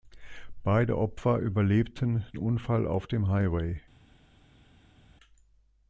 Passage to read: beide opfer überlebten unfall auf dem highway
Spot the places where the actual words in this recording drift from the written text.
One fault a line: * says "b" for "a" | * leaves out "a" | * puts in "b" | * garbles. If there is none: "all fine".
all fine